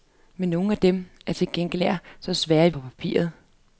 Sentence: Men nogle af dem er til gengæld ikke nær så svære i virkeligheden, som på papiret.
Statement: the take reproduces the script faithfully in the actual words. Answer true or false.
false